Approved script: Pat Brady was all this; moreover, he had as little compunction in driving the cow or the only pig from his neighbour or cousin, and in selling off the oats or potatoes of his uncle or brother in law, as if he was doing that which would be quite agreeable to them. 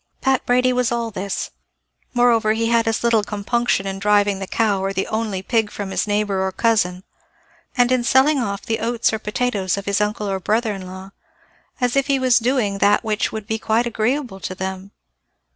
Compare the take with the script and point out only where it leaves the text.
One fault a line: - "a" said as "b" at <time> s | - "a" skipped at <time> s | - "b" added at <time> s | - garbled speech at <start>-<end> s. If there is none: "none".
none